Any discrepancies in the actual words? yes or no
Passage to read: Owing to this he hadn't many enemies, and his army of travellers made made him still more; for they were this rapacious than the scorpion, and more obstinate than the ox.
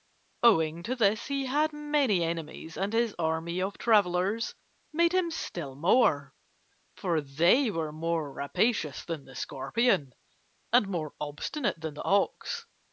yes